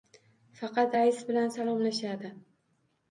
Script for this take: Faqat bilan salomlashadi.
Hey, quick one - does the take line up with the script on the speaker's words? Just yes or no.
no